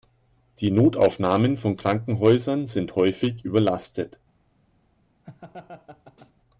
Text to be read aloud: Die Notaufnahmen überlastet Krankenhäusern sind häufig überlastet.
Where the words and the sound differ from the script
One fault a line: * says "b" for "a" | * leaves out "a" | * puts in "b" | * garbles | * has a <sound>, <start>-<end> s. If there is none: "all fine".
* says "von" for "überlastet"
* has a laugh, 5.2-6.3 s